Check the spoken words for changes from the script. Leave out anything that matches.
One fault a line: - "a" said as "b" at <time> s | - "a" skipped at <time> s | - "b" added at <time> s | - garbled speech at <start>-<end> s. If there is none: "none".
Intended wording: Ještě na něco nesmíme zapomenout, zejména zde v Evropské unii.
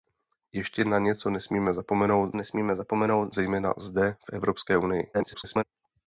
- "nesmíme zapomenout" added at 2.3 s
- garbled speech at 5.1-5.6 s